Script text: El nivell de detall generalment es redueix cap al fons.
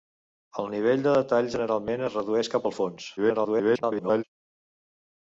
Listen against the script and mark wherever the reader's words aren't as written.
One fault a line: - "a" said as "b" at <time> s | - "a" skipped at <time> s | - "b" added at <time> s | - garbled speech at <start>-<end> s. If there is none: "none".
- garbled speech at 3.2-4.2 s